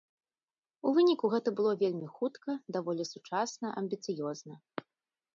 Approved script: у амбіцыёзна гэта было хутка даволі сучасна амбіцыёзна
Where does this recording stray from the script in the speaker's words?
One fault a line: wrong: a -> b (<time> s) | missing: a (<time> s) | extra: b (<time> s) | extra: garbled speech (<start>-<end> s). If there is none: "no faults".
wrong: амбіцыёзна -> выніку (1.0 s)
extra: вельмі (1.8 s)